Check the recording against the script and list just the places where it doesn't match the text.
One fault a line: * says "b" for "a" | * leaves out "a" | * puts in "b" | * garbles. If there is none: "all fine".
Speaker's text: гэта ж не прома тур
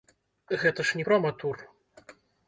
all fine